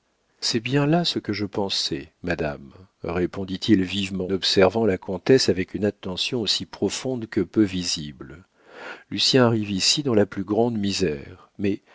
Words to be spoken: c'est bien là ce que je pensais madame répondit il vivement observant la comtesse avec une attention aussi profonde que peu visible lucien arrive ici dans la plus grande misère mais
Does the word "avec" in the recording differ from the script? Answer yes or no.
no